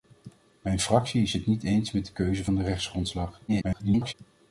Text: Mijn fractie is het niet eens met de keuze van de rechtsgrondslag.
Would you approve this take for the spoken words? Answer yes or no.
no